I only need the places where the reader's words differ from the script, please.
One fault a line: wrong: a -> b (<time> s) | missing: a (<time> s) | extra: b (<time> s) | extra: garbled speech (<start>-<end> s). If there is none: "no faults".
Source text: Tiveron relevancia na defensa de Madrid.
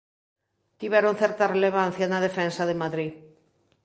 extra: certa (1.2 s)